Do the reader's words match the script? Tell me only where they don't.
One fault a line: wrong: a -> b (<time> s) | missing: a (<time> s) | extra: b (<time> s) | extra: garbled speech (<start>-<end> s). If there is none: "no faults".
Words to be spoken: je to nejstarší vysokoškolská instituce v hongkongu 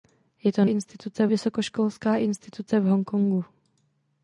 wrong: nejstarší -> instituce (0.6 s)